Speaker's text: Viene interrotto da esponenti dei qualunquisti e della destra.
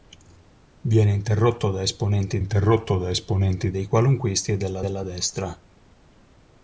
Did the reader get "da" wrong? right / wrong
right